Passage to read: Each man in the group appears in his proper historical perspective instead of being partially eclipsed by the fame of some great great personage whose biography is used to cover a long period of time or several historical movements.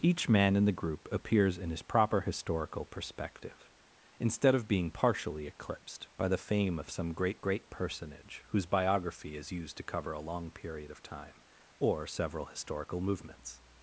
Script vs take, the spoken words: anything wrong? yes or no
no